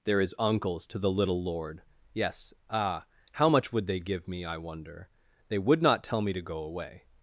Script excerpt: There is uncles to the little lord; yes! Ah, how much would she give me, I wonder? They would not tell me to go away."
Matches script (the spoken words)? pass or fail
fail